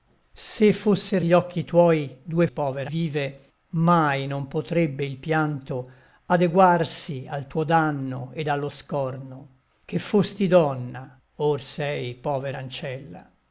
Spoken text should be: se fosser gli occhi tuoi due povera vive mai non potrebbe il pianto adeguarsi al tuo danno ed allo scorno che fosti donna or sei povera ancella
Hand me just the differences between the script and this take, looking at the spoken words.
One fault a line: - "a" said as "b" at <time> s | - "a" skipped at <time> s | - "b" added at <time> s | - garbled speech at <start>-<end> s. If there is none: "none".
none